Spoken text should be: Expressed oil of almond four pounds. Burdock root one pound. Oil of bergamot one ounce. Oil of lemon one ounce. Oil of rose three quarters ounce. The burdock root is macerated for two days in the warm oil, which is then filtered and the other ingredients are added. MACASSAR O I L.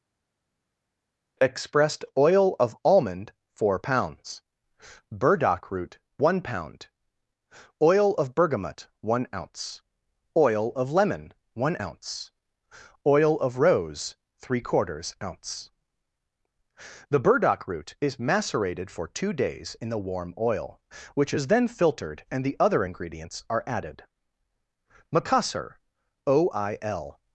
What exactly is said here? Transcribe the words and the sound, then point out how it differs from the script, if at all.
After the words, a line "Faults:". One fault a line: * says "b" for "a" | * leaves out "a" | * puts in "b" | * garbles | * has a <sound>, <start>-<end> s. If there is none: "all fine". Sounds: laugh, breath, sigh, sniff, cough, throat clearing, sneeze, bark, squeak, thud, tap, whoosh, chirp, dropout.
Expressed oil of almond four pounds. Burdock root one pound. Oil of bergamot one ounce. Oil of lemon one ounce. Oil of rose three quarters ounce. The burdock root is macerated for two days in the warm oil, which is then filtered and the other ingredients are added. MACASSAR O I L.
Faults:
all fine